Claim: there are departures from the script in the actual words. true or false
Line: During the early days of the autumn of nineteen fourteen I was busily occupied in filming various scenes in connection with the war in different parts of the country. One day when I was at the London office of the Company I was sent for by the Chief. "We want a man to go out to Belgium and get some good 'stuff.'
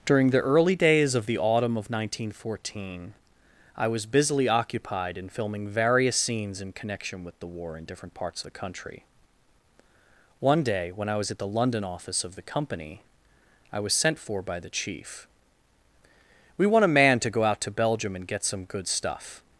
true